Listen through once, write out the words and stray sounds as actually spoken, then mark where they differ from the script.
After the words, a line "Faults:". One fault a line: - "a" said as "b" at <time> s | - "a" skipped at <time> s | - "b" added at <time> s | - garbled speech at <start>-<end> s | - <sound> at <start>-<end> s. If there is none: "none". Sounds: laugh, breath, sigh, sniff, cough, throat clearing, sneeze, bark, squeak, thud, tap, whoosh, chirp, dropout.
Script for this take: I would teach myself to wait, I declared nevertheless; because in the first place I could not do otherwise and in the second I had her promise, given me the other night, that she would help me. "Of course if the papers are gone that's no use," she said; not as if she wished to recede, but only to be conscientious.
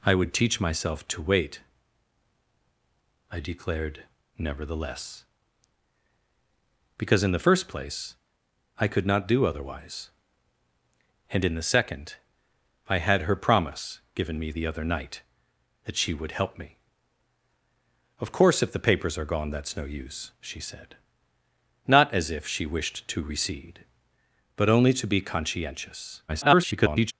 I would teach myself to wait, I declared nevertheless; because in the first place I could not do otherwise and in the second I had her promise, given me the other night, that she would help me. "Of course if the papers are gone that's no use," she said; not as if she wished to recede, but only to be conscientious. [garbled]
Faults:
- garbled speech at 26.3-27.1 s